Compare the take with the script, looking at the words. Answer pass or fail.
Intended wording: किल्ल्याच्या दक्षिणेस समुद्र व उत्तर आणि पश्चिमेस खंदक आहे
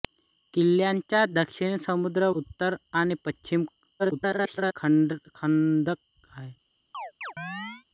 fail